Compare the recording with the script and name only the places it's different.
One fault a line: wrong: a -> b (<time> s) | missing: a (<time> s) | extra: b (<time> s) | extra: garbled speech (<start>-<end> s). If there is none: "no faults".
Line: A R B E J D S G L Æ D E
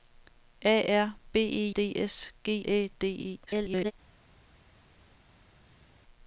missing: J (1.7 s)
missing: L (2.7 s)
extra: garbled speech (3.5-3.9 s)